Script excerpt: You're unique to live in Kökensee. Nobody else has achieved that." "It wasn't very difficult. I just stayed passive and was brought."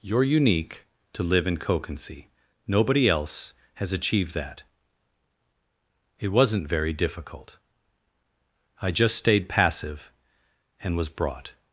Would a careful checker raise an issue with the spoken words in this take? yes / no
no